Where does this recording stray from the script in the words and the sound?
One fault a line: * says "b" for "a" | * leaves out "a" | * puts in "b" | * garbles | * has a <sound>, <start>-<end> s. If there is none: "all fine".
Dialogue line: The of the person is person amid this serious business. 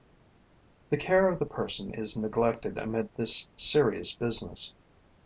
* puts in "care"
* says "neglected" for "person"